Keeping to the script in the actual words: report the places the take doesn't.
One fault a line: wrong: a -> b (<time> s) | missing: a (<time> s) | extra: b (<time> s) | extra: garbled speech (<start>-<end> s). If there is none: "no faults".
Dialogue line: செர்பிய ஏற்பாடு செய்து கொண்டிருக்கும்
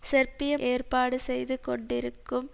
no faults